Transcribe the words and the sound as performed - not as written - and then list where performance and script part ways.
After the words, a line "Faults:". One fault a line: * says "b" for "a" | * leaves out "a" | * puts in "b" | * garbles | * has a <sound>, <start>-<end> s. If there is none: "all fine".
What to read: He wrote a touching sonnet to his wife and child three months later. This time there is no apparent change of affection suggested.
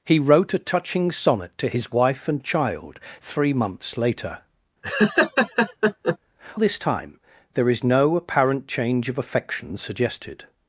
He wrote a touching sonnet to his wife and child three months later. This time there is no apparent change of affection suggested.
Faults:
* has a laugh, 4.8-6.2 s